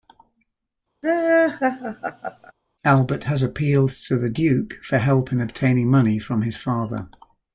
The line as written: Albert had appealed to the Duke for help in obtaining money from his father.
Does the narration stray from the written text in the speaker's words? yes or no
yes